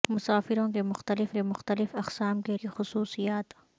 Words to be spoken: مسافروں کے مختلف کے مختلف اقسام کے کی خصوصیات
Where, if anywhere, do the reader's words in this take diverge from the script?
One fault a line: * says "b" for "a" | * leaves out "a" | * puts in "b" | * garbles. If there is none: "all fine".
all fine